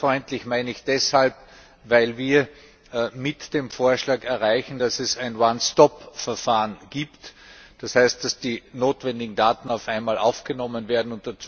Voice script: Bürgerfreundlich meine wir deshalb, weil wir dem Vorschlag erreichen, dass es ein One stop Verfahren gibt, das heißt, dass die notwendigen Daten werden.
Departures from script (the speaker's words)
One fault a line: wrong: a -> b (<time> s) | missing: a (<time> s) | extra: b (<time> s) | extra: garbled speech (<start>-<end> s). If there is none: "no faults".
wrong: wir -> ich (0.7 s)
extra: mit (3.1 s)
extra: auf einmal aufgenommen (9.7 s)